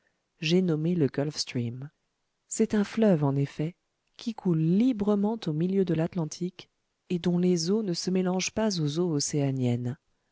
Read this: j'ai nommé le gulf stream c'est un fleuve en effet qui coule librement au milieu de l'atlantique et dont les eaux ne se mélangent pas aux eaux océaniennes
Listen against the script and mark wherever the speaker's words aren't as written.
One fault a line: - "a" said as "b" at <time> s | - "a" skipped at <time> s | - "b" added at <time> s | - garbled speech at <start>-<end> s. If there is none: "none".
none